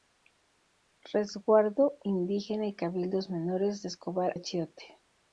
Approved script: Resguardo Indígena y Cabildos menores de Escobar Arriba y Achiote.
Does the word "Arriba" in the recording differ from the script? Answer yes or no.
yes